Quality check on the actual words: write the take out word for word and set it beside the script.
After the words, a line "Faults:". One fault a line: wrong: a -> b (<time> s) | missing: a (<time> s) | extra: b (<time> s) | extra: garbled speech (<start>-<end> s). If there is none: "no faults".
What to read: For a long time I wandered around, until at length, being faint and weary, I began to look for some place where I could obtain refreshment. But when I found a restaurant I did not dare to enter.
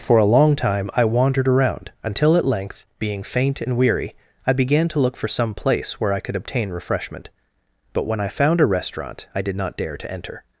For a long time I wandered around, until at length, being faint and weary, I began to look for some place where I could obtain refreshment. But when I found a restaurant I did not dare to enter.
Faults:
no faults